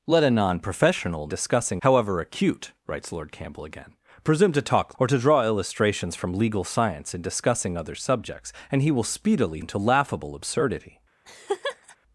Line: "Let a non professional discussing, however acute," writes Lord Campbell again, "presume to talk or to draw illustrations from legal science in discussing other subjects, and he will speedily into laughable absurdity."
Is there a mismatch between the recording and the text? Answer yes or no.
no